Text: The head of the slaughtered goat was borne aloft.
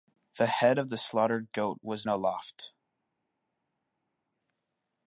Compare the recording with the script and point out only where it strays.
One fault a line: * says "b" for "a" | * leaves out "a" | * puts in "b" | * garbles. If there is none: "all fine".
* leaves out "borne"